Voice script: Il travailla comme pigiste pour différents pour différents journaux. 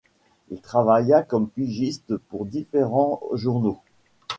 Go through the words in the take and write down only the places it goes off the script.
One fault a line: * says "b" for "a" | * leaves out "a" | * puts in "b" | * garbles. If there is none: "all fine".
* leaves out "pour différents"